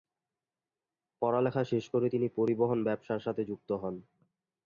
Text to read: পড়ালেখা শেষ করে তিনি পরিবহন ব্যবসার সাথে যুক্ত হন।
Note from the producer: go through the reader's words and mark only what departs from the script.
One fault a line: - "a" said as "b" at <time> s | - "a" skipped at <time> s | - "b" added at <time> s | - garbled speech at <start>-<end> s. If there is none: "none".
none